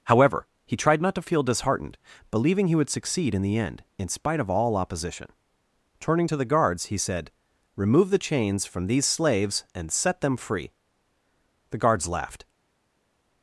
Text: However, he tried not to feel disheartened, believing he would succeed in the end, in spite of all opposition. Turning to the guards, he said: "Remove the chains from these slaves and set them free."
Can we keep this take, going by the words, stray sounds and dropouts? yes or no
no